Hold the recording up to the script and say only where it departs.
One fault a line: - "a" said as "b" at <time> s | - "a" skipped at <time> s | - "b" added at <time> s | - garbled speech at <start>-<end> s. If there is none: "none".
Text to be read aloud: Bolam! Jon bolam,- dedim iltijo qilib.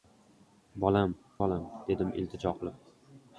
- "Jon" skipped at 1.1 s